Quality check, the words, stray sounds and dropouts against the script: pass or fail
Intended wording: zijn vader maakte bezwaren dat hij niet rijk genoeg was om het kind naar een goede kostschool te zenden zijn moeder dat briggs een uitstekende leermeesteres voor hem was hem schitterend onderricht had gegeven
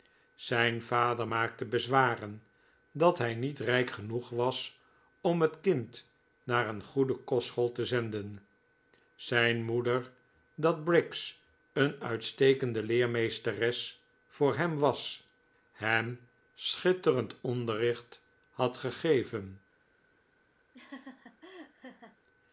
fail